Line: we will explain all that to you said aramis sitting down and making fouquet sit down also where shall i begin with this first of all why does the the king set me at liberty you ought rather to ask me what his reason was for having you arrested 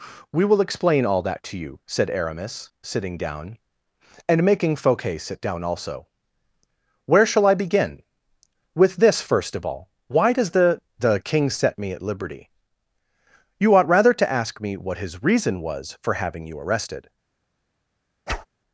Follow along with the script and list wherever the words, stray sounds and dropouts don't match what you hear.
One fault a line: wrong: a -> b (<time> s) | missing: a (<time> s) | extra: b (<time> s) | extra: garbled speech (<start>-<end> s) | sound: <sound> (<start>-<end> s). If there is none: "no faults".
sound: whoosh (18.3-18.5 s)